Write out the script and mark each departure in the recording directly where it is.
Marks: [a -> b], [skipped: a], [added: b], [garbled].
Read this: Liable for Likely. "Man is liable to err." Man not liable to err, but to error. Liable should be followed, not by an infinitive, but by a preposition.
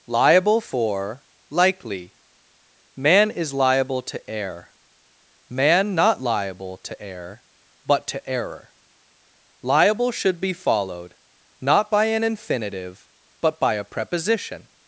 Liable for Likely. "Man is liable to err." Man not liable to err, but to error. Liable should be followed, not by an infinitive, but by a preposition.